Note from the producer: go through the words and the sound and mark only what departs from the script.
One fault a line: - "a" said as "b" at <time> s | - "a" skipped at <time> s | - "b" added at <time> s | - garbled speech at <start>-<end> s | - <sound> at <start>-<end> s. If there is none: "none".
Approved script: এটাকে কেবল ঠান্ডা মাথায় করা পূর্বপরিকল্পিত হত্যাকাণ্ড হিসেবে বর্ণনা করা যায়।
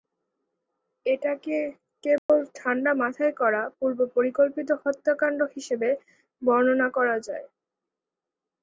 - dropout at 2.2-2.3 s